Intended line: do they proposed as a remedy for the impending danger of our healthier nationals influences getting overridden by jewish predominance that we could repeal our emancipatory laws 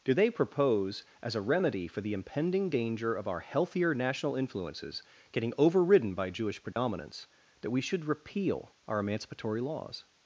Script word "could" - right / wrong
wrong